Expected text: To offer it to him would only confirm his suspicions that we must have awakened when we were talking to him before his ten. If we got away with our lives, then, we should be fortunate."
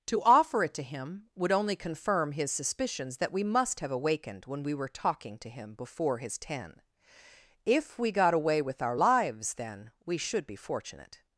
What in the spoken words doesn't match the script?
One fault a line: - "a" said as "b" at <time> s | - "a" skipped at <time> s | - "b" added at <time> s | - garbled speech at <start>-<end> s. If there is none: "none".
none